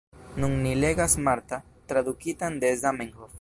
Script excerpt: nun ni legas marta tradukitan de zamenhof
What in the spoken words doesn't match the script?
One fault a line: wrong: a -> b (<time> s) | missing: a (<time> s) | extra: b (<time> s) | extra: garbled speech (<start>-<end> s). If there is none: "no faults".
no faults